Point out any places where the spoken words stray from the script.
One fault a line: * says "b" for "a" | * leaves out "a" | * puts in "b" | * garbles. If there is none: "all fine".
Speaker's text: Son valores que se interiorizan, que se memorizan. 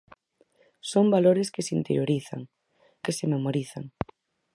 all fine